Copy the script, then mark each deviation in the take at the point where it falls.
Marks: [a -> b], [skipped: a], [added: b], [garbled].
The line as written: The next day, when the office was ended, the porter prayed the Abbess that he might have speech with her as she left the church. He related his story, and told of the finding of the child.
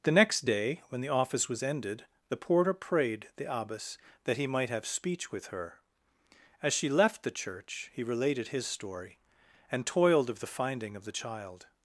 The next day, when the office was ended, the porter prayed the Abbess that he might have speech with her as she left the church. He related his story, and [told -> toiled] of the finding of the child.